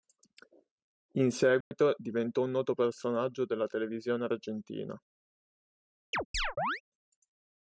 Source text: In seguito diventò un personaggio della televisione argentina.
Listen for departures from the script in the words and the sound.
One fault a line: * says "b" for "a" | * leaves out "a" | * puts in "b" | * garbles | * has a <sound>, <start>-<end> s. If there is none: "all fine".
* has a dropout, 1.6-1.7 s
* puts in "noto"
* has a chirp, 6.1-6.8 s